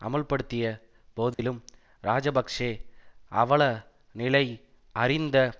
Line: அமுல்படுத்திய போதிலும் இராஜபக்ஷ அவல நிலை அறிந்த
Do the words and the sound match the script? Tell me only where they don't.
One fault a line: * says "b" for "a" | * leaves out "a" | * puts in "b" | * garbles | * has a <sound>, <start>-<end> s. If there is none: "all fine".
* has a dropout, 1.3-1.4 s